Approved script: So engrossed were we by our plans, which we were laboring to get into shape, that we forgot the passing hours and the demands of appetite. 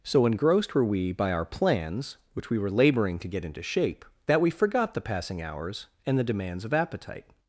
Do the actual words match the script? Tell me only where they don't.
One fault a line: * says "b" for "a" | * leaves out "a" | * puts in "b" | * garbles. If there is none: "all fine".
all fine